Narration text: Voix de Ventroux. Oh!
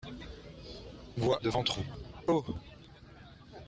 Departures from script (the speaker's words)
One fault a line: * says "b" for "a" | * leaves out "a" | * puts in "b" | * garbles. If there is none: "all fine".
all fine